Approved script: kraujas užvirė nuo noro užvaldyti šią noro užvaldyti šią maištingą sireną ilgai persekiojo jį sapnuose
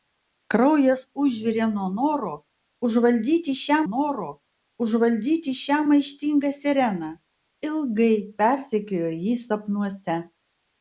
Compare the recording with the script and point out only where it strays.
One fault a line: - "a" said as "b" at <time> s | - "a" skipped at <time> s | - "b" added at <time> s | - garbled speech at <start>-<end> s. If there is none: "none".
none